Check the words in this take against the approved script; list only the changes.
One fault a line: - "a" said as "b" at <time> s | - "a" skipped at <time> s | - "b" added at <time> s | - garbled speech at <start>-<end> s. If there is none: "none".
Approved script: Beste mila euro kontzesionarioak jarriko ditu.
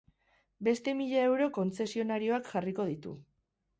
none